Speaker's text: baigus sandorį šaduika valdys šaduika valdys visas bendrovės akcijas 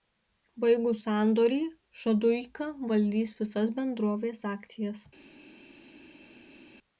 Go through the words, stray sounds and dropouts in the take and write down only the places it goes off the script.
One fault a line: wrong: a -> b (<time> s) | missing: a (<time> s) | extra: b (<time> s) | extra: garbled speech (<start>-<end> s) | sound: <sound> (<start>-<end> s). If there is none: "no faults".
missing: šaduika valdys (3.3 s)